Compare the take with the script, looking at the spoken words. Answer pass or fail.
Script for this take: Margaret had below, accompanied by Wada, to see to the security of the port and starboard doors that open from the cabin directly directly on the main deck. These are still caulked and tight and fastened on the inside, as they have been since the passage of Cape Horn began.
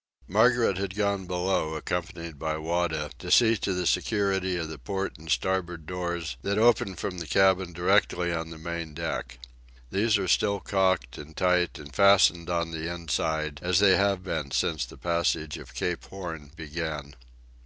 fail